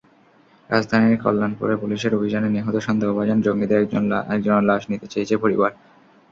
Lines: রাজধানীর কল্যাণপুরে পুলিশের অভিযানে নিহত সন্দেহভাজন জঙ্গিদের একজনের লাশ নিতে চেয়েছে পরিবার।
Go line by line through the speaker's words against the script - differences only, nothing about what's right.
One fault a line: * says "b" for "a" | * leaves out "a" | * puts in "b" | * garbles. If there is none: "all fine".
all fine